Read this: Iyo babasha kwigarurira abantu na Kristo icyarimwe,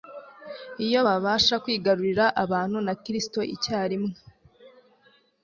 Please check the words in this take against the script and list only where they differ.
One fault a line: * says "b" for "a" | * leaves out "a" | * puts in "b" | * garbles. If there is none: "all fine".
all fine